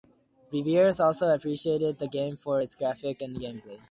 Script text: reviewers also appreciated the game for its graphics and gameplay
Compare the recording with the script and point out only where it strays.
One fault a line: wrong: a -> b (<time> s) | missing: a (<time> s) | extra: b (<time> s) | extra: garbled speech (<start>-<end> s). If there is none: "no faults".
no faults